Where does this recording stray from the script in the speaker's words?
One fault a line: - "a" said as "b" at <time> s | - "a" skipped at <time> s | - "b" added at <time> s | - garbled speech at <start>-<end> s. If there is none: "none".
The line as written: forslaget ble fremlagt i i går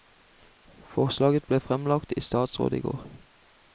- "statsråd" added at 2.3 s